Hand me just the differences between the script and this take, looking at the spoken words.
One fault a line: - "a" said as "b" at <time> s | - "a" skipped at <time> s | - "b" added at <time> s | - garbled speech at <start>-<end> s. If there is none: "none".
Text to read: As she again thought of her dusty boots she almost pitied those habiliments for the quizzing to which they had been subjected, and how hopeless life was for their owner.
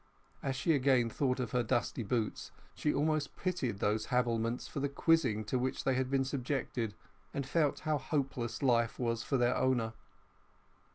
- "felt" added at 7.5 s